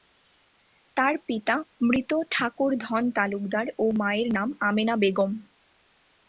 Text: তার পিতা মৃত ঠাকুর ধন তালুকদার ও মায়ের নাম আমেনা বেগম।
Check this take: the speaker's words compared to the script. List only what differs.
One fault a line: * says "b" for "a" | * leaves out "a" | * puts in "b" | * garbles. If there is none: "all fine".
all fine